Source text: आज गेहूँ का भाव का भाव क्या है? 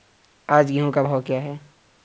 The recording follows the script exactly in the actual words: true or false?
false